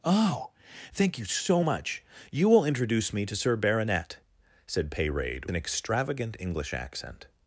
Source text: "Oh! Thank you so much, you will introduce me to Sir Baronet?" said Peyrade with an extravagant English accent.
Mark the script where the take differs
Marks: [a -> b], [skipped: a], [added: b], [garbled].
"Oh! Thank you so much, you will introduce me to Sir Baronet?" said Peyrade [skipped: with] an extravagant English accent.